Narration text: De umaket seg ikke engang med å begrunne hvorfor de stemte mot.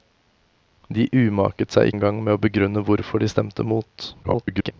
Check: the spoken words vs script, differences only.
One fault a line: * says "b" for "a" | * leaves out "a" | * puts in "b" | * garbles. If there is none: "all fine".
* leaves out "ikke"
* garbles